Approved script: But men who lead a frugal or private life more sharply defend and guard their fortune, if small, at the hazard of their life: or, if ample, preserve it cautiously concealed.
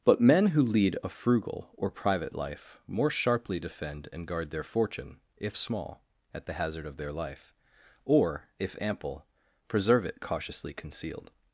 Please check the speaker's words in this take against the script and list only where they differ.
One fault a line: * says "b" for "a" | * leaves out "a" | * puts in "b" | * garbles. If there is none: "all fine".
all fine